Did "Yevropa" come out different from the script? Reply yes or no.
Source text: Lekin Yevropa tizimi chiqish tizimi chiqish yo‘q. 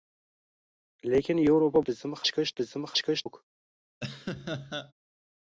no